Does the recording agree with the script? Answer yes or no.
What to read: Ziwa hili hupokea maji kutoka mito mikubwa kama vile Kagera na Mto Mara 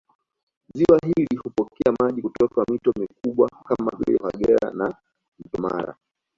yes